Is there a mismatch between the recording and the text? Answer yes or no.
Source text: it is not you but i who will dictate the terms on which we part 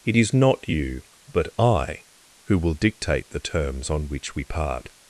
no